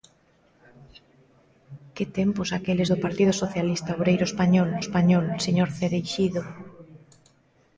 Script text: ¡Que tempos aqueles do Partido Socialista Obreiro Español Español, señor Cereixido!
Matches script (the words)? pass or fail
pass